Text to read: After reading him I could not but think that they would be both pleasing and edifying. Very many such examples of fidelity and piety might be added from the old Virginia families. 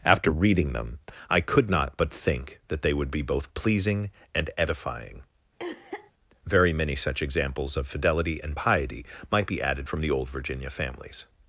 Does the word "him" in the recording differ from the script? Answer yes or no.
yes